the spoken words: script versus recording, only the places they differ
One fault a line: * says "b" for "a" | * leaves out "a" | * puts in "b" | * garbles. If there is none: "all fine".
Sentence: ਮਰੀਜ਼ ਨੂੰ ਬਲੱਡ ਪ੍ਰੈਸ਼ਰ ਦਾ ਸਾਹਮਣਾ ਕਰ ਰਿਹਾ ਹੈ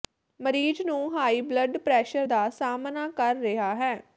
* puts in "ਹਾਈ"